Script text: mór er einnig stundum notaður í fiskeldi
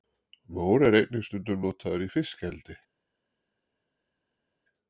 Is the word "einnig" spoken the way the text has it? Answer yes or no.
yes